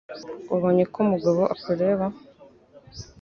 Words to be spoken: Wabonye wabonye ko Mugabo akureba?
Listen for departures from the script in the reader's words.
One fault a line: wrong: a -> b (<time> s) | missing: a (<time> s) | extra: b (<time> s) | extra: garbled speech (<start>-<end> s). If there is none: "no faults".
missing: wabonye (0.8 s)